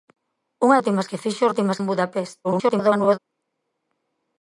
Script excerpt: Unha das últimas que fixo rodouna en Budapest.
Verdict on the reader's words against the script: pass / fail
fail